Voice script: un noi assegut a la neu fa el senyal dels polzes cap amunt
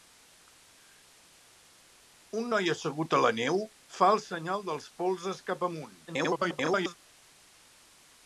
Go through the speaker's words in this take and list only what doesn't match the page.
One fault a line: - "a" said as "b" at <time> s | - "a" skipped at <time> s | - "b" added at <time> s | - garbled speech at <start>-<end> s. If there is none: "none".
- garbled speech at 6.1-7.0 s